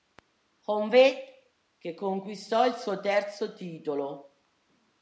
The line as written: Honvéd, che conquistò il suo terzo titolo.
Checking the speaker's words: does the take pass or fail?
pass